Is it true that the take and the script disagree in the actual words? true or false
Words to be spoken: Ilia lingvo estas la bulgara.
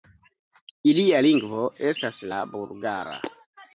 false